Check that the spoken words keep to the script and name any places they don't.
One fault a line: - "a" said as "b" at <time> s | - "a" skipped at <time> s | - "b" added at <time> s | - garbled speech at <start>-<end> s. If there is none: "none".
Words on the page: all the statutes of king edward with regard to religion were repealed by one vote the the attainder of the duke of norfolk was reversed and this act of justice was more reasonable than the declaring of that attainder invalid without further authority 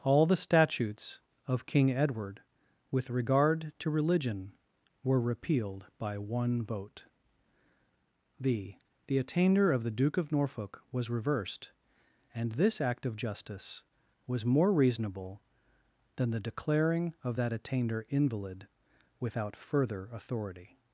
none